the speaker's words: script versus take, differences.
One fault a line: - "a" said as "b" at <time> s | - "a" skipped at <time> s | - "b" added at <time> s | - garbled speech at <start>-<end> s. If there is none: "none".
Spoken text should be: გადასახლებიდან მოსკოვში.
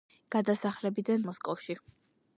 none